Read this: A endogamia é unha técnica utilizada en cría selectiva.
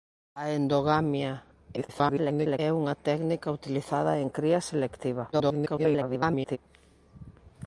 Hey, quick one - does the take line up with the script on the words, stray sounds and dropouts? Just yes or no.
no